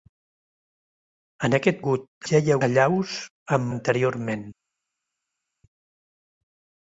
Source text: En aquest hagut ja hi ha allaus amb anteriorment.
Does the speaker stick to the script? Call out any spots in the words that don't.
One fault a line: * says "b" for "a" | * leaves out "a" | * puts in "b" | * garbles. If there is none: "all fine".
all fine